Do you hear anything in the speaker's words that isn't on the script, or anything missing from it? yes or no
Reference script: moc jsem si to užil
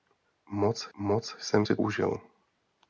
yes